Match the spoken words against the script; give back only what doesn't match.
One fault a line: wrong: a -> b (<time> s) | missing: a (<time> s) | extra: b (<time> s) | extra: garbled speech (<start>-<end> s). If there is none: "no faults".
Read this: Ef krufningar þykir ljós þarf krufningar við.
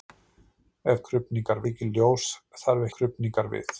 no faults